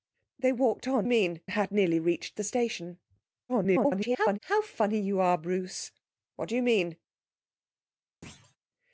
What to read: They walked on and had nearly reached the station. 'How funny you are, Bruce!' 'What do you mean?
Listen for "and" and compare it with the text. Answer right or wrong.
wrong